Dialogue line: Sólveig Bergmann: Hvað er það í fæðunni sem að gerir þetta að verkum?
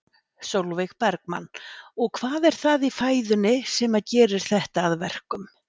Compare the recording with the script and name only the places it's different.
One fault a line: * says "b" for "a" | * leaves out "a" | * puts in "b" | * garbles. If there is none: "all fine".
* puts in "Og"